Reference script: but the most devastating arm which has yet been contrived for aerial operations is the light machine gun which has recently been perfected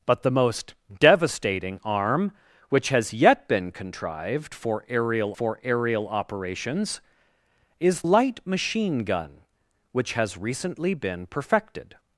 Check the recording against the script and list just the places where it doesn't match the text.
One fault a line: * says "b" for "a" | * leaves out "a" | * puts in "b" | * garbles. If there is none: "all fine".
* puts in "for aerial"
* leaves out "the"